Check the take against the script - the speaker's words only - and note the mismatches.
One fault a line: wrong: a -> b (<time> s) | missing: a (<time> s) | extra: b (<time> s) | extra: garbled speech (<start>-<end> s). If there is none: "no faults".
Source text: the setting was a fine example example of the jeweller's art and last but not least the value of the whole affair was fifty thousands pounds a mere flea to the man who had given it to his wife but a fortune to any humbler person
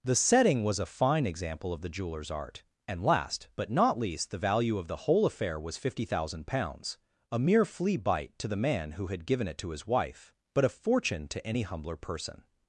missing: example (1.7 s)
wrong: thousands -> thousand (6.0 s)
extra: bite (8.0 s)